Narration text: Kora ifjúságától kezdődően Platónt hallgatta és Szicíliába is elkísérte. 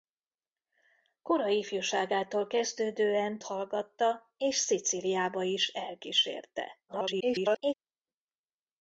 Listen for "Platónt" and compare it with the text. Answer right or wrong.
wrong